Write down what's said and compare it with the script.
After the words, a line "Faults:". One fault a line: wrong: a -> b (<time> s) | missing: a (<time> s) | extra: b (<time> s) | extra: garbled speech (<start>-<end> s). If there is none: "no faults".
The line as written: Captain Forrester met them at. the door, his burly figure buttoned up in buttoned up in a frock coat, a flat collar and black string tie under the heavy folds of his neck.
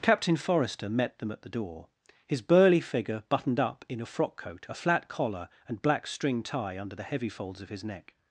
Captain Forrester met them at. the door, his burly figure buttoned up in a frock coat, a flat collar and black string tie under the heavy folds of his neck.
Faults:
missing: buttoned up in (4.0 s)